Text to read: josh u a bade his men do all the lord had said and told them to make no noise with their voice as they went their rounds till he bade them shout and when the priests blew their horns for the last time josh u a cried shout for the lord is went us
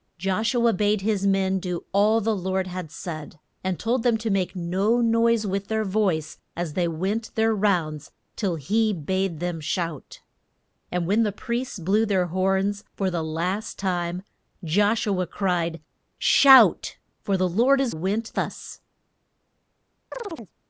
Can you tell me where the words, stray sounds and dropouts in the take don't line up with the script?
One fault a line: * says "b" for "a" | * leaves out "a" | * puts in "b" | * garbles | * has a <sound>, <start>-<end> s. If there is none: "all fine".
* has a chirp, 20.1-20.5 s